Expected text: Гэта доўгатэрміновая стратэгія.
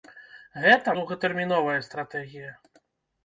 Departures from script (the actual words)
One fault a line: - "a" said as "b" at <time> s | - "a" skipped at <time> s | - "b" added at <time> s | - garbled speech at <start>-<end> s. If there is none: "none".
none